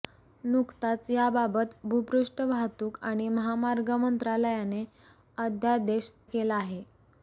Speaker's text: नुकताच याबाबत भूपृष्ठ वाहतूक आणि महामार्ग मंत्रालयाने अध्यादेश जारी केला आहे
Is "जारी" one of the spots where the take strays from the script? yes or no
yes